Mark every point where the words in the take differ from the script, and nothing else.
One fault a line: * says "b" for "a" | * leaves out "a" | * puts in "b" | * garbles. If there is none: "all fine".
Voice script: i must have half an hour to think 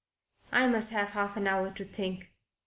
all fine